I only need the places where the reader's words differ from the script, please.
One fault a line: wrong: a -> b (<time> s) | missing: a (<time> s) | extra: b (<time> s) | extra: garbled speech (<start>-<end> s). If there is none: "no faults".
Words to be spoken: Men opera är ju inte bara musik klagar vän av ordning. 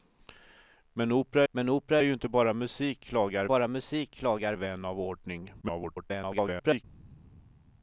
extra: men opera (1.5 s)
extra: bara musik klagar (3.4 s)
extra: garbled speech (5.6-6.8 s)